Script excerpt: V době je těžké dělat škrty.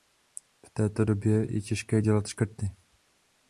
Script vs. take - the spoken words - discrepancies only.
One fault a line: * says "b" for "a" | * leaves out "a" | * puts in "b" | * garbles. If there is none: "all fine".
* puts in "této"